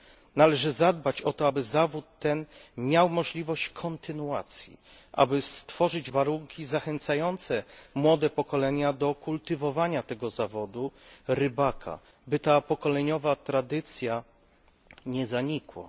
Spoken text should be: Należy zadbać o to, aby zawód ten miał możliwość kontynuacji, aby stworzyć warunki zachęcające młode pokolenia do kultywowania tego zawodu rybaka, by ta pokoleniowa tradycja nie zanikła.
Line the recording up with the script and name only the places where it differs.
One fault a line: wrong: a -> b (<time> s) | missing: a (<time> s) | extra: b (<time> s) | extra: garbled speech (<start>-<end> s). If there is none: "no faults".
no faults